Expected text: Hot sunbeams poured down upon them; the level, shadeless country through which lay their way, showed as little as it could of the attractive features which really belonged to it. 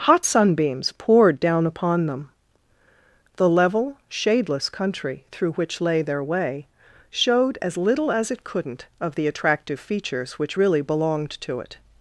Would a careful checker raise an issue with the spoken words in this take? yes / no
yes